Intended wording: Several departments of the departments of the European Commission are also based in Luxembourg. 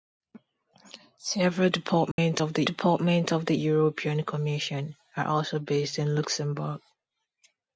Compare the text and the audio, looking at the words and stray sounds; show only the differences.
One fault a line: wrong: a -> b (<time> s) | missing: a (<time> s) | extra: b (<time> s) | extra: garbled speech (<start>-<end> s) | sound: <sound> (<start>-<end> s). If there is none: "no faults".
sound: dropout (2.1-2.2 s)